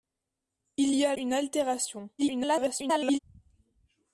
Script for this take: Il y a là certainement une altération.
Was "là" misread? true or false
true